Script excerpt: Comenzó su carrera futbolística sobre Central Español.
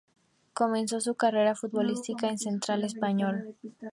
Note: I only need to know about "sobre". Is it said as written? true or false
false